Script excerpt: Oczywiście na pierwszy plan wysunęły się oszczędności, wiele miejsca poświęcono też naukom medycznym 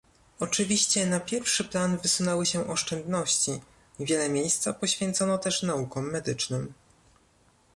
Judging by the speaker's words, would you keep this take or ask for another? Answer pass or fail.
pass